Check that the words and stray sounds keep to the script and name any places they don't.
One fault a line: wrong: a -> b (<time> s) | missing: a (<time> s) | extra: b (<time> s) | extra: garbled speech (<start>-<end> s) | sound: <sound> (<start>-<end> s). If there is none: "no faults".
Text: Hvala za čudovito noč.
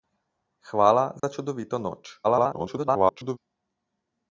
sound: dropout (1.2-1.2 s)
extra: garbled speech (2.2-3.4 s)